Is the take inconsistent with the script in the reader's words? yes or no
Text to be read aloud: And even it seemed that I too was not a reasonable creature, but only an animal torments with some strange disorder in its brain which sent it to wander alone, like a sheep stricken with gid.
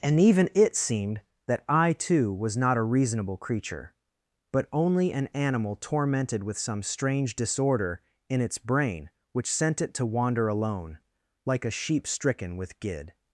yes